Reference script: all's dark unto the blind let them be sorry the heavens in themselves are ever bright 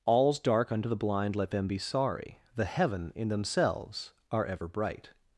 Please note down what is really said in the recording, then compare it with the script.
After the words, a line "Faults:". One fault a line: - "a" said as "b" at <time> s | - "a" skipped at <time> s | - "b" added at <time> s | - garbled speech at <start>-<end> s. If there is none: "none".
all's dark unto the blind let them be sorry the heaven in themselves are ever bright
Faults:
- "heavens" said as "heaven" at 2.6 s